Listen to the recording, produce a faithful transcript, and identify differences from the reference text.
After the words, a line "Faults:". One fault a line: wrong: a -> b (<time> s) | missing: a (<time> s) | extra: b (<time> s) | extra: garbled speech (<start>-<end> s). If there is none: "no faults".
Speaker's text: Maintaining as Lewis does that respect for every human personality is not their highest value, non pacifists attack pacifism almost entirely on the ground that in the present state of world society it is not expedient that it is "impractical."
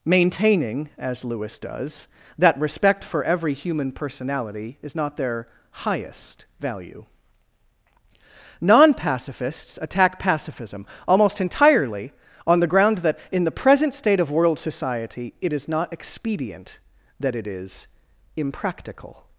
Maintaining as Lewis does that respect for every human personality is not their highest value, non pacifists attack pacifism almost entirely on the ground that in the present state of world society it is not expedient that it is "impractical."
Faults:
no faults